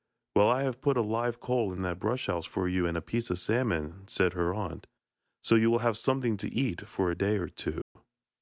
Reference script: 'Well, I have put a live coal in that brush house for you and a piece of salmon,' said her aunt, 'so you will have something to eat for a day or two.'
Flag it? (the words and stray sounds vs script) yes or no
yes